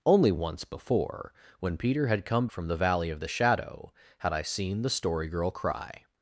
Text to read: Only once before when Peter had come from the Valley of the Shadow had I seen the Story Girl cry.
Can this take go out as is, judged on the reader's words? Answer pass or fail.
pass